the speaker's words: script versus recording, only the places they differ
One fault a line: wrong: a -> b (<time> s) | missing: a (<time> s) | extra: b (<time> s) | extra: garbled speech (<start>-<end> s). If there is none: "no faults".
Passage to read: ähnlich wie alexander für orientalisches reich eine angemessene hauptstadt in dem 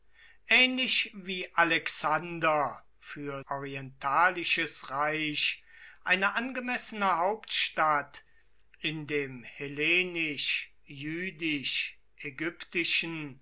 no faults